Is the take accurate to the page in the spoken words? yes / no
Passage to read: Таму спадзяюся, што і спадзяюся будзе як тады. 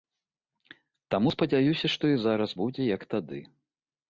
no